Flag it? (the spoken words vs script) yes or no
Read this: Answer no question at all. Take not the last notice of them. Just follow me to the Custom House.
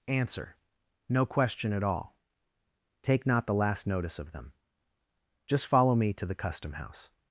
no